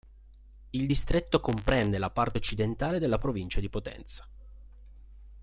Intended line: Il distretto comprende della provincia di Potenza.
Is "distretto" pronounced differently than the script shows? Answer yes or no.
no